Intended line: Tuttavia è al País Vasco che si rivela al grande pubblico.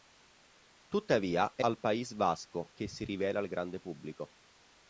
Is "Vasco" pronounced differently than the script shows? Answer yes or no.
no